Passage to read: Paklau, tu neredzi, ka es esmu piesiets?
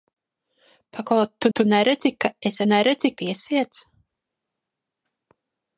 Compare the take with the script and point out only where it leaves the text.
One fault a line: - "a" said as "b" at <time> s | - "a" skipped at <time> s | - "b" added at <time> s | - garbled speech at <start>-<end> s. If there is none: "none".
- "tu" added at 1.5 s
- "esmu" said as "neredzi" at 2.7 s